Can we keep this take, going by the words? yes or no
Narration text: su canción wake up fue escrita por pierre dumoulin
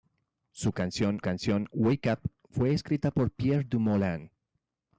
no